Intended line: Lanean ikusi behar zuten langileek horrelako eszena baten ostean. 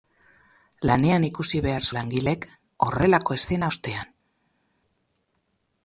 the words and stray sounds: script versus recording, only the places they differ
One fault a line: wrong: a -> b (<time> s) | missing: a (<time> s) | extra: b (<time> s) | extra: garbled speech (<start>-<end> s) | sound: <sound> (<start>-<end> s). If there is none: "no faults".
missing: zuten (1.9 s)
missing: baten (3.7 s)